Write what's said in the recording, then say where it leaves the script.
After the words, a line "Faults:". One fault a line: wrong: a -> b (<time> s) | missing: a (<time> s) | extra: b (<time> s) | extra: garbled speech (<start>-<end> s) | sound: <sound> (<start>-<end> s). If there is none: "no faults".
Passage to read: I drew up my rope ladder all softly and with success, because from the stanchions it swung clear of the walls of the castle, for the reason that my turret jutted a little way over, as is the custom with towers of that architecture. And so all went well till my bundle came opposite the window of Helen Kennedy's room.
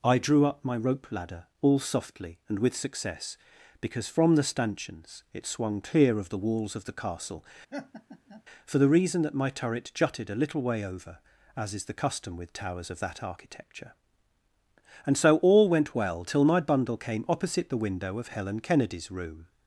I drew up my rope ladder all softly and with success, because from the stanchions it swung clear of the walls of the castle, for the reason that my turret jutted a little way over, as is the custom with towers of that architecture. And so all went well till my bundle came opposite the window of Helen Kennedy's room.
Faults:
sound: laugh (7.7-8.4 s)